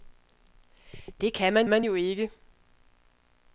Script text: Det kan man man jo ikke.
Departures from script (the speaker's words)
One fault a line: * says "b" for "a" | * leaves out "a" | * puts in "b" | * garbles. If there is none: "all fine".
all fine